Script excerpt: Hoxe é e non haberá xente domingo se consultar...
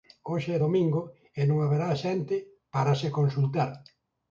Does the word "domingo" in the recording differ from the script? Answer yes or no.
yes